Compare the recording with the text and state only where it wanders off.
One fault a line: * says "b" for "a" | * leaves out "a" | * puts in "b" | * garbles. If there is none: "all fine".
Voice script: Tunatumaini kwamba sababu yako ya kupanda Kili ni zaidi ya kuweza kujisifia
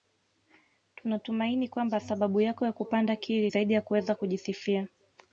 * leaves out "ni"